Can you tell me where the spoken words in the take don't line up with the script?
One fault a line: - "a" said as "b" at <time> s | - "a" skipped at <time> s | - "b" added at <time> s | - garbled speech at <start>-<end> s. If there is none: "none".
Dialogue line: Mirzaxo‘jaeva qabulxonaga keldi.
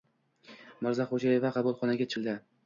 none